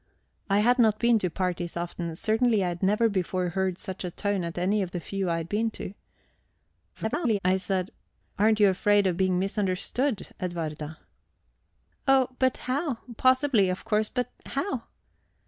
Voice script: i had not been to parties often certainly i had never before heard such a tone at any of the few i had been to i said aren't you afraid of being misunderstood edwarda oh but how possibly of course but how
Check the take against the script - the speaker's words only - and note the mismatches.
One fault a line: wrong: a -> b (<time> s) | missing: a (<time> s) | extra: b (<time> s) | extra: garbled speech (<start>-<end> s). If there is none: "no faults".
extra: garbled speech (6.9-7.4 s)